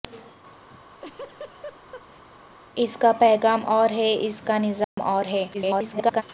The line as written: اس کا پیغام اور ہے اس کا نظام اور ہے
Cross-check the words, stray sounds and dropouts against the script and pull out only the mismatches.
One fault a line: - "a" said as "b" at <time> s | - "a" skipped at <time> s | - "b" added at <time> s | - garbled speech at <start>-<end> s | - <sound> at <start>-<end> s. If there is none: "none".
- laugh at 0.7-2.2 s
- dropout at 4.8-5.0 s
- garbled speech at 5.5-6.2 s